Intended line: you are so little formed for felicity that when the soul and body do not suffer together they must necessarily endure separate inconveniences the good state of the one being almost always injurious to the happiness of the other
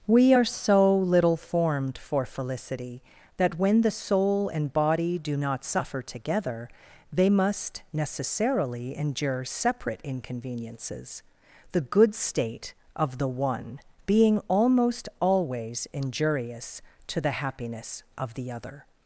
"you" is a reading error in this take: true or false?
true